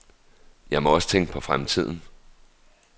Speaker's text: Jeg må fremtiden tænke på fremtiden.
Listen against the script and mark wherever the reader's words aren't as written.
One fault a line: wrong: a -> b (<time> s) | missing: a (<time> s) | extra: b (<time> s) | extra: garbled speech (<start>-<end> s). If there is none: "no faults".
wrong: fremtiden -> også (0.9 s)